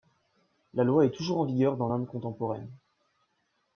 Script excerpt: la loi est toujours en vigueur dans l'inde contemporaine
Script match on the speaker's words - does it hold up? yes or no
yes